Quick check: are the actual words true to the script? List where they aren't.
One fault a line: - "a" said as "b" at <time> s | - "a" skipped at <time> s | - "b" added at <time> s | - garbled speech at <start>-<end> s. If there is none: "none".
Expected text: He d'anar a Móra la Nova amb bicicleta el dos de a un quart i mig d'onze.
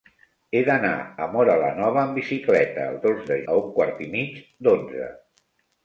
none